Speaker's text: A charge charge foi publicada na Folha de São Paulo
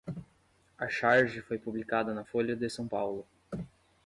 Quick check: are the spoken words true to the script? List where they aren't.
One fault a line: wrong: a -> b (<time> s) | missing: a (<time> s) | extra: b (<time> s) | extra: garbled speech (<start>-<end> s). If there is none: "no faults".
missing: charge (1.4 s)